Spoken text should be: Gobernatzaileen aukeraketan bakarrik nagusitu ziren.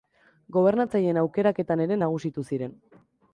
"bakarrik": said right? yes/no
no